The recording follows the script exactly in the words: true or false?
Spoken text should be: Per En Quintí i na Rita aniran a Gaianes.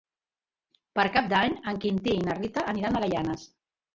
false